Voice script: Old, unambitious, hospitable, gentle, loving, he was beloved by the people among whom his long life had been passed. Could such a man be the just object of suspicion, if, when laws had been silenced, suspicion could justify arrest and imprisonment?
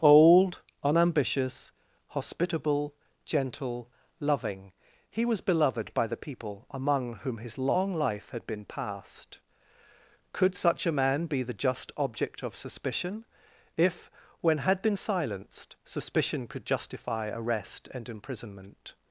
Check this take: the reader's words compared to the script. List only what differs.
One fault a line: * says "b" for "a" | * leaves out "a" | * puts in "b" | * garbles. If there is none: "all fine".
* leaves out "laws"